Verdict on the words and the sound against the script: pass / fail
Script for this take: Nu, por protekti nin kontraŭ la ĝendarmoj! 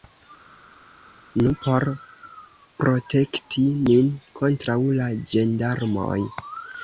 pass